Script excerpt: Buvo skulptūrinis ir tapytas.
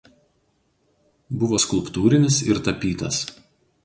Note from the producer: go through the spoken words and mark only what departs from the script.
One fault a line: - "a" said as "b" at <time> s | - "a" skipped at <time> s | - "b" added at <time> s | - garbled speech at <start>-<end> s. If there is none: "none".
none